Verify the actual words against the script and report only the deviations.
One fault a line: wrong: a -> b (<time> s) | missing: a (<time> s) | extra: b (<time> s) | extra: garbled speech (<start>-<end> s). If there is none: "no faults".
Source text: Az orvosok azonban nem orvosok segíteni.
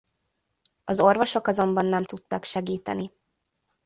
wrong: orvosok -> tudtak (2.0 s)